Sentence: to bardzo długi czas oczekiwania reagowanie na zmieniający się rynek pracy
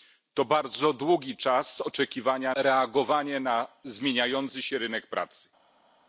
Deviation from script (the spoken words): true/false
false